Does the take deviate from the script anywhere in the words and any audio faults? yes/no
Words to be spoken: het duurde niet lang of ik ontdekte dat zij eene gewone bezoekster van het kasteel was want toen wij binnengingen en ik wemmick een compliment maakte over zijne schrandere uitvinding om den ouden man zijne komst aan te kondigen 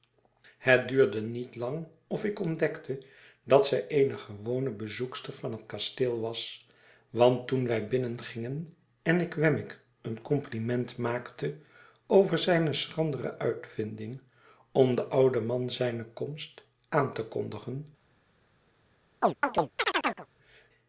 yes